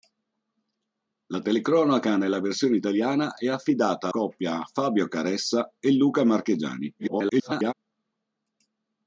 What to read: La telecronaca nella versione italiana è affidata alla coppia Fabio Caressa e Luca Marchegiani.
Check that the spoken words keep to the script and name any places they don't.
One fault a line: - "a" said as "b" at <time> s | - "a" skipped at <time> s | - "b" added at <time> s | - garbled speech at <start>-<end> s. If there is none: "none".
- "alla" skipped at 4.1 s
- garbled speech at 7.0-7.7 s